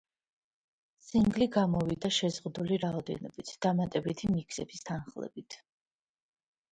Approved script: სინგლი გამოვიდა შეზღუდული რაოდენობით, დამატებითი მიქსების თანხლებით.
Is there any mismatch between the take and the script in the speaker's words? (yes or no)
no